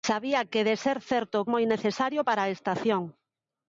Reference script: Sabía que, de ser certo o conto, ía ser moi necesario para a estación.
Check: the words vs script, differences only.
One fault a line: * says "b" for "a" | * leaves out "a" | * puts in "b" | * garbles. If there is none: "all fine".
* leaves out "conto ía ser"